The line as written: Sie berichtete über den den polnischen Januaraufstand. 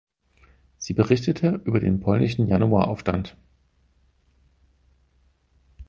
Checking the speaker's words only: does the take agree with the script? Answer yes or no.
no